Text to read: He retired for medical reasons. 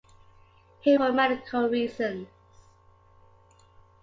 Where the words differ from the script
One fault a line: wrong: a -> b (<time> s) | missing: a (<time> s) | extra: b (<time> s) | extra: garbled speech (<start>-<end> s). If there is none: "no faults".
missing: retired (1.0 s)